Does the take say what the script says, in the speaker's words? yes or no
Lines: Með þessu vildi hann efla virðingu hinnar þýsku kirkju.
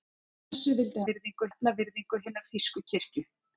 no